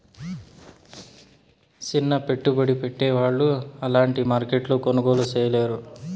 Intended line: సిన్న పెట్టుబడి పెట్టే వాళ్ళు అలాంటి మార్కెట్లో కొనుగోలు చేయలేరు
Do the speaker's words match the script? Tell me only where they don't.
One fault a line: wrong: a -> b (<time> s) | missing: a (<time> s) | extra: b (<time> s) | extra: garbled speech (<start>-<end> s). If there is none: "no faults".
no faults